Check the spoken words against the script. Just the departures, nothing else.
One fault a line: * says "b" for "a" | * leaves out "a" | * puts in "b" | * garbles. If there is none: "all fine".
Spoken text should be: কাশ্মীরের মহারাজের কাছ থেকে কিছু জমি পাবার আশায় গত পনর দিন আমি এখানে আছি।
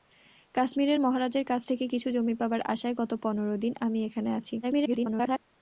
* garbles